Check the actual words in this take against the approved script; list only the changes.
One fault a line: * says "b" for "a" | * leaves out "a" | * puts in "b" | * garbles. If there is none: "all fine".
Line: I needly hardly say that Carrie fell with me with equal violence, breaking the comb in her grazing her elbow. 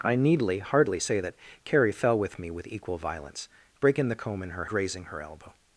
all fine